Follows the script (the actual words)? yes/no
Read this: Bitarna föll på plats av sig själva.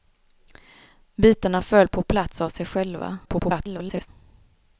no